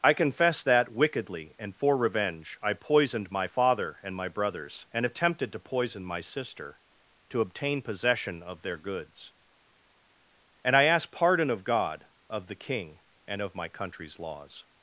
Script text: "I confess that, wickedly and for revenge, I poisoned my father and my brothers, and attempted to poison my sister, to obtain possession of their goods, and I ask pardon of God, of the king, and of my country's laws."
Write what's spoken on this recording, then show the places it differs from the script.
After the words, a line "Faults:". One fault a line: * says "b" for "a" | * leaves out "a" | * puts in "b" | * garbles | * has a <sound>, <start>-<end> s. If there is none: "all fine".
"I confess that, wickedly and for revenge, I poisoned my father and my brothers, and attempted to poison my sister, to obtain possession of their goods, and I ask pardon of God, of the king, and of my country's laws."
Faults:
all fine